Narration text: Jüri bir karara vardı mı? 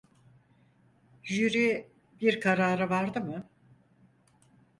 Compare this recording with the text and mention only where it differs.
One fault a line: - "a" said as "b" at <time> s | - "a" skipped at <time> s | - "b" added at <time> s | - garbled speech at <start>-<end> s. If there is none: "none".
none